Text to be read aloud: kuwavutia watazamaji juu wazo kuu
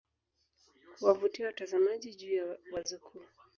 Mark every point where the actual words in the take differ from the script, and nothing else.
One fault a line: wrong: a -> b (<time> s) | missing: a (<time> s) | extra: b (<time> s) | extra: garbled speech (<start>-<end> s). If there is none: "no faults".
extra: ya (2.3 s)